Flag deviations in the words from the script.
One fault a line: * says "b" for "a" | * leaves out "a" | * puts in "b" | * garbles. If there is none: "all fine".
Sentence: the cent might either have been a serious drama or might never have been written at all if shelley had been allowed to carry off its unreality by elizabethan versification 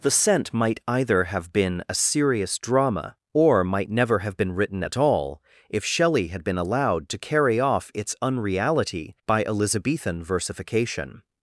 all fine